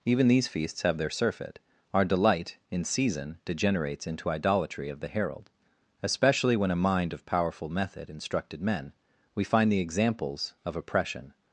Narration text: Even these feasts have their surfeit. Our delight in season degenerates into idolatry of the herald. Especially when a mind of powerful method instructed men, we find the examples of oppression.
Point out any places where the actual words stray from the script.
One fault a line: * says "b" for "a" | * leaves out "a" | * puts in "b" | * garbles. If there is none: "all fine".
all fine